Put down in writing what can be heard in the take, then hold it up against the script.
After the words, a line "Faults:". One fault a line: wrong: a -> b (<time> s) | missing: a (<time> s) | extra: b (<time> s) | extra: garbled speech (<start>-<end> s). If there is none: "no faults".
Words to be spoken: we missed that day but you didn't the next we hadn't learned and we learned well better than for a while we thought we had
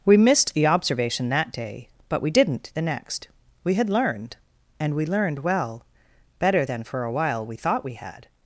we missed the observation that day but we didn't the next we had learned and we learned well better than for a while we thought we had
Faults:
extra: the observation (0.5 s)
wrong: you -> we (2.2 s)
wrong: hadn't -> had (3.7 s)